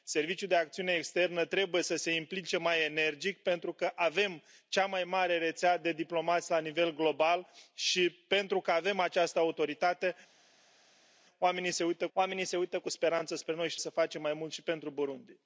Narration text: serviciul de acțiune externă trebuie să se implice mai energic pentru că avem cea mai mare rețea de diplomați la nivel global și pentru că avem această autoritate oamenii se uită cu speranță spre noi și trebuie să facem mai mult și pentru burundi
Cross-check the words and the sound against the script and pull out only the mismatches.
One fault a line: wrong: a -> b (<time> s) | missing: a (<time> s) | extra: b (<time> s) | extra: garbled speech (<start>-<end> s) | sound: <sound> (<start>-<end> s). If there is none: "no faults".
extra: oamenii se uită (12.1 s)
missing: trebuie (13.8 s)